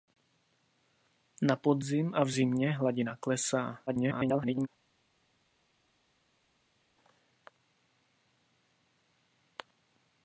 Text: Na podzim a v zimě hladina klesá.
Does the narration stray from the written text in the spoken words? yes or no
yes